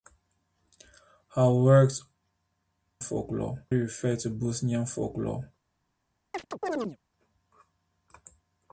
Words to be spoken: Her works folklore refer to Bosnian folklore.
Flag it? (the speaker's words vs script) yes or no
no